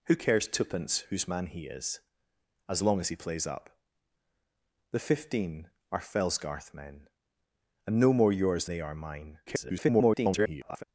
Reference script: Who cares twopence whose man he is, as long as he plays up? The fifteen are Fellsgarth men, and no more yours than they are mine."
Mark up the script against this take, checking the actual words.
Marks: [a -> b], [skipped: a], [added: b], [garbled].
Who cares twopence whose man he is, as long as he plays up? The fifteen are Fellsgarth men, and no more yours [skipped: than] they are mine." [garbled]